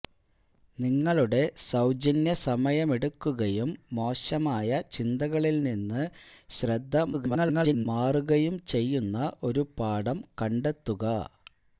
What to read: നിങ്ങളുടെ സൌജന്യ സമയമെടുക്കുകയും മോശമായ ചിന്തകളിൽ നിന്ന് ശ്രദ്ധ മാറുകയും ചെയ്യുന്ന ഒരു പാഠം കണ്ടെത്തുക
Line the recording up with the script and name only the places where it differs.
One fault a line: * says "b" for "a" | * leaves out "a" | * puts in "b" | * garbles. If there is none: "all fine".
* garbles